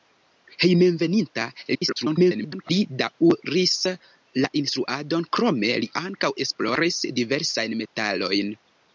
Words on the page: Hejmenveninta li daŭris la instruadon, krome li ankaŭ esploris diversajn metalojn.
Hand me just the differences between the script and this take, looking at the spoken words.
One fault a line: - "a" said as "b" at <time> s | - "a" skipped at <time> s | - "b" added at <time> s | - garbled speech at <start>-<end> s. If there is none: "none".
- garbled speech at 1.7-2.7 s